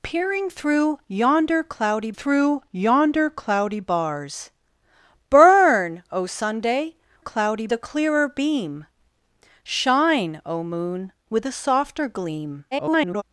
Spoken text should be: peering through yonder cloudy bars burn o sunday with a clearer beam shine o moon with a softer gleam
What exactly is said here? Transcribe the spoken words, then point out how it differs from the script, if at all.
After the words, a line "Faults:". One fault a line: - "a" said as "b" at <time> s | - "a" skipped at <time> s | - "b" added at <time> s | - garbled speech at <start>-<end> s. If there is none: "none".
peering through yonder cloudy through yonder cloudy bars burn o sunday cloudy a clearer beam shine o moon with a softer gleam [garbled]
Faults:
- "through yonder cloudy" added at 2.1 s
- "with" said as "cloudy" at 7.2 s
- garbled speech at 12.7-13.2 s